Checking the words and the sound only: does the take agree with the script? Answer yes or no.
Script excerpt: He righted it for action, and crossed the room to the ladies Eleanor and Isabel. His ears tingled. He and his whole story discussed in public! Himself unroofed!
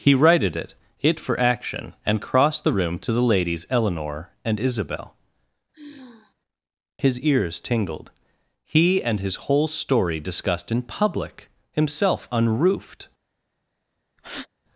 no